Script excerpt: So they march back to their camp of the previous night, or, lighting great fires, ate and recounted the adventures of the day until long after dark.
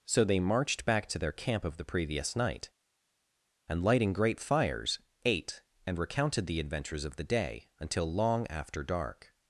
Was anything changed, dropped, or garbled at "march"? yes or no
yes